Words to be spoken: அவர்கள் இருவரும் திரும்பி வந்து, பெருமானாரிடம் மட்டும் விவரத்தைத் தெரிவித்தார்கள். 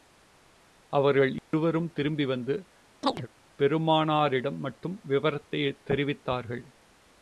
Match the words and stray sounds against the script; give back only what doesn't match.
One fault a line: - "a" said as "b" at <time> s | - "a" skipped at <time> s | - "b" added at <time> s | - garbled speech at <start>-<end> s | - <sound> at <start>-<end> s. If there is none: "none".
- dropout at 1.4-1.5 s
- chirp at 3.0-3.3 s